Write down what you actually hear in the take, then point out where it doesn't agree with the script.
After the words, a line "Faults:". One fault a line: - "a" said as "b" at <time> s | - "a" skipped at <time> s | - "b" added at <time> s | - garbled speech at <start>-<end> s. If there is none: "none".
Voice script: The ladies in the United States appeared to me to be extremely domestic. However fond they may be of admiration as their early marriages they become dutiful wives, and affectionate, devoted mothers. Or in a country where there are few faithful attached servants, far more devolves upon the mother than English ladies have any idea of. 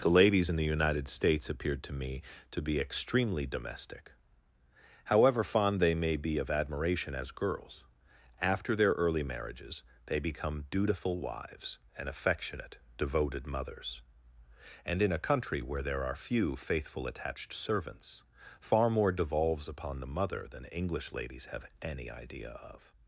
The ladies in the United States appeared to me to be extremely domestic. However fond they may be of admiration as girls, after their early marriages they become dutiful wives, and affectionate, devoted mothers. And in a country where there are few faithful attached servants, far more devolves upon the mother than English ladies have any idea of.
Faults:
- "girls after" added at 7.4 s
- "Or" said as "And" at 14.8 s